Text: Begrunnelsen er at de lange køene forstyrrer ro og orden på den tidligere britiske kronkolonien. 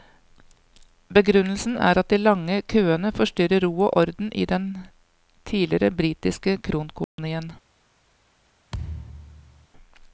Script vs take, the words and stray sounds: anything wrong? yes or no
yes